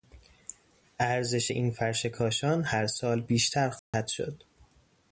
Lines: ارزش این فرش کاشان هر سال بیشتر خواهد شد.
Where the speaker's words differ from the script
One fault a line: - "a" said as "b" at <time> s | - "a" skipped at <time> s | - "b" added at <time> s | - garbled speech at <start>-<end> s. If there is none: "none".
none